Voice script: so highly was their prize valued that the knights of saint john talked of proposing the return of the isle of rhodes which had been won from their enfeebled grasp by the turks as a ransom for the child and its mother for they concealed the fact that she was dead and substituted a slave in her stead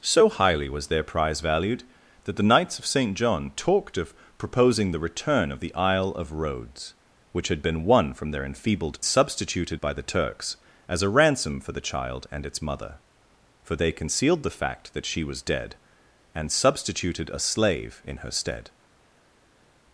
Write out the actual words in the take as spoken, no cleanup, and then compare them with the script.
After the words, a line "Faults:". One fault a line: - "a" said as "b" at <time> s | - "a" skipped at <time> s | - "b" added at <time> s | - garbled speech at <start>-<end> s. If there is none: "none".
so highly was their prize valued that the knights of saint john talked of proposing the return of the isle of rhodes which had been won from their enfeebled substituted by the turks as a ransom for the child and its mother for they concealed the fact that she was dead and substituted a slave in her stead
Faults:
- "grasp" said as "substituted" at 9.0 s